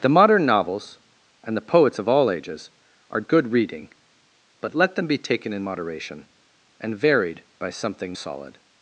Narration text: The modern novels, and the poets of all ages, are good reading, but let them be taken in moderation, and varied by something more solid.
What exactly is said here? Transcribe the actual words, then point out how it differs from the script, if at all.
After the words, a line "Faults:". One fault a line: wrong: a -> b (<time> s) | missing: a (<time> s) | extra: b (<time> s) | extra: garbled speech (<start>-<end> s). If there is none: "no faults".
The modern novels, and the poets of all ages, are good reading, but let them be taken in moderation, and varied by something solid.
Faults:
missing: more (8.2 s)